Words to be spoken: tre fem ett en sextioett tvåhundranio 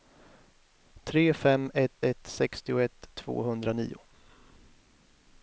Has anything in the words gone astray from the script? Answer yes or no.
yes